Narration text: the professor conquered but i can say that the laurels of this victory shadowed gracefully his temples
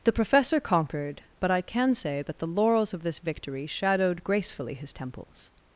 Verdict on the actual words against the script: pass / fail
pass